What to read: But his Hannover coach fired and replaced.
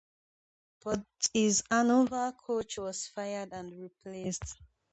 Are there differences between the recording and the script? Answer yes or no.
yes